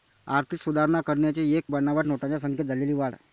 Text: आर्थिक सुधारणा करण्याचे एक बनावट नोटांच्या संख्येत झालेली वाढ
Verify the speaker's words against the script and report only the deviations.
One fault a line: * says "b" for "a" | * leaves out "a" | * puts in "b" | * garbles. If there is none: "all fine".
all fine